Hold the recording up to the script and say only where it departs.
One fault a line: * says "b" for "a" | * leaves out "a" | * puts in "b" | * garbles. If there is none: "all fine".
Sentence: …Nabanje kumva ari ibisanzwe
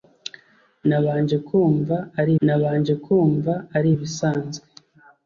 * puts in "nabanje kumva ari"